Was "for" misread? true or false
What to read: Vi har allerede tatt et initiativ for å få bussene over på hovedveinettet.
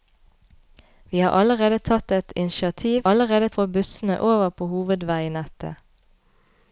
true